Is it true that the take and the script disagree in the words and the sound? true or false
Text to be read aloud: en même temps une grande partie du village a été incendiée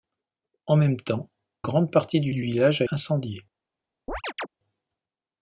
true